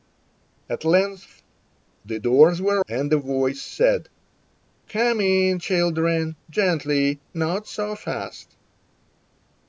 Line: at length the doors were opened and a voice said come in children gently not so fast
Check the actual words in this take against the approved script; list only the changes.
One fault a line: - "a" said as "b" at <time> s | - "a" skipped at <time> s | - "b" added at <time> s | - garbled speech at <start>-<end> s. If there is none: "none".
- "opened" skipped at 2.8 s